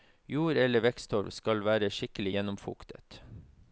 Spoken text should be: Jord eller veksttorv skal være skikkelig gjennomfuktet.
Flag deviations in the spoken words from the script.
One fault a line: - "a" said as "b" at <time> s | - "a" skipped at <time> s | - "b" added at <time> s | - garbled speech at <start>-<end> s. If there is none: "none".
none